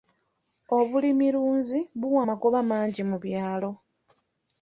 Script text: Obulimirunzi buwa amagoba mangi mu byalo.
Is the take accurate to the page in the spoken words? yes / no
yes